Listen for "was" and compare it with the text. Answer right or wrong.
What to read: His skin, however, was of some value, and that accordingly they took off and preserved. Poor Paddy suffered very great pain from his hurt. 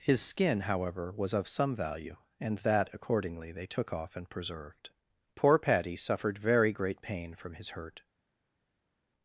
right